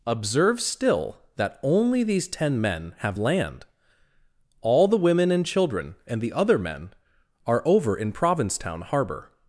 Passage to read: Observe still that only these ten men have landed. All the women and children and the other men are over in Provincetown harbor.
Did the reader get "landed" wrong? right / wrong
wrong